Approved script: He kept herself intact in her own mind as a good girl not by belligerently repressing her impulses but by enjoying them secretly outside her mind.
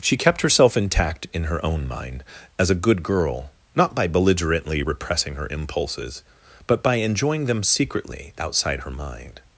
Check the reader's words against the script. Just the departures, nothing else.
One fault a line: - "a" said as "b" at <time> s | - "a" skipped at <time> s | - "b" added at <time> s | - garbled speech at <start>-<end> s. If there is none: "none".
- "He" said as "She" at 0.0 s